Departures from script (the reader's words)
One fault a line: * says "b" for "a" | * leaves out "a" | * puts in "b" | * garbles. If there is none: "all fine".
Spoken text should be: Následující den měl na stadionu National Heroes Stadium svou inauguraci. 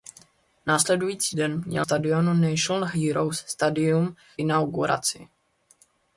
* leaves out "na"
* leaves out "svou"